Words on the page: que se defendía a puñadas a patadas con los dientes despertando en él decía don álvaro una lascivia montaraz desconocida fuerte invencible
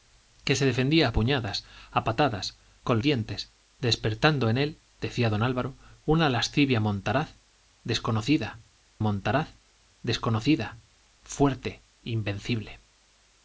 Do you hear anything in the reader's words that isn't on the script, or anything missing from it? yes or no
yes